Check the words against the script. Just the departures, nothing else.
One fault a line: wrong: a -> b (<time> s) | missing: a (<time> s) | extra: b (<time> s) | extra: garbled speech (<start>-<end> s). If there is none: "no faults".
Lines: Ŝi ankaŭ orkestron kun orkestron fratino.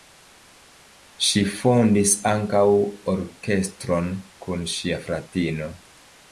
extra: fondis (1.6 s)
wrong: orkestron -> ŝia (4.8 s)